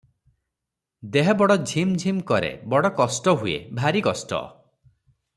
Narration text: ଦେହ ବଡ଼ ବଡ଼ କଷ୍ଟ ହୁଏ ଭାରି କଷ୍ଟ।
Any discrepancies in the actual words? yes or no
yes